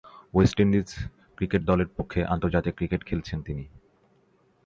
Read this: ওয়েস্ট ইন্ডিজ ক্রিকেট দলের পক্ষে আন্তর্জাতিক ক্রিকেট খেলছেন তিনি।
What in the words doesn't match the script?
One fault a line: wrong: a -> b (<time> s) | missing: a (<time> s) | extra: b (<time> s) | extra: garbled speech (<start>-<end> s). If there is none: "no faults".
no faults